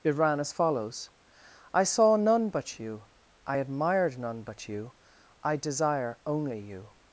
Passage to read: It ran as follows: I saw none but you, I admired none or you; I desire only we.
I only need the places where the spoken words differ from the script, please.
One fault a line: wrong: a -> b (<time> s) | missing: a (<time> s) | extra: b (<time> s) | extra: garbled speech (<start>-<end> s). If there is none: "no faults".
wrong: or -> but (4.4 s)
wrong: we -> you (6.6 s)